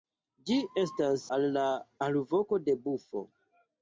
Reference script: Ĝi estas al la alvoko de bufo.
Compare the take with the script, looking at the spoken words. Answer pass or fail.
pass